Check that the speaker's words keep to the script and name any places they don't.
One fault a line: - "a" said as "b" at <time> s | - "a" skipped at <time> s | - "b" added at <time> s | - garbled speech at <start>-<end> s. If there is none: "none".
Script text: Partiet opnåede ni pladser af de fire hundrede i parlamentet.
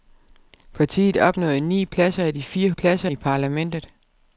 - "hundrede" said as "pladser" at 2.7 s